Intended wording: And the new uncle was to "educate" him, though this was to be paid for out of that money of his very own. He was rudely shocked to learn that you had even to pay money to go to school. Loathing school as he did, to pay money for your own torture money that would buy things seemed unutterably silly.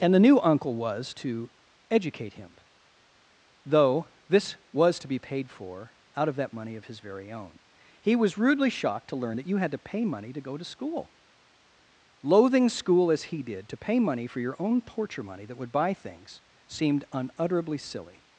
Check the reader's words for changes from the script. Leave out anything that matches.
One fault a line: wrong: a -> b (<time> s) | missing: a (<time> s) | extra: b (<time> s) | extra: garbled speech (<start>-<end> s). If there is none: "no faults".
missing: even (9.7 s)